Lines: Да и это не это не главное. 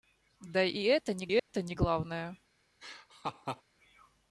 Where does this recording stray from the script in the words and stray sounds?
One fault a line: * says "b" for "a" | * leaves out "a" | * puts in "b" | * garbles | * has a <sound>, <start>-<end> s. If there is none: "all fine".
* has a dropout, 1.4-1.5 s
* has a laugh, 2.8-3.6 s